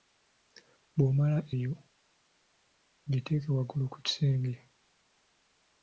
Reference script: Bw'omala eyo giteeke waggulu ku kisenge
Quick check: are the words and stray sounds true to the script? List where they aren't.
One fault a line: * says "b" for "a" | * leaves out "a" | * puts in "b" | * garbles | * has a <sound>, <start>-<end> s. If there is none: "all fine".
all fine